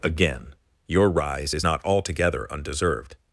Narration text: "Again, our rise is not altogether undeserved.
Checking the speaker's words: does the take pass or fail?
fail